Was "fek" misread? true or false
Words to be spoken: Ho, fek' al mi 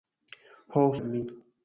true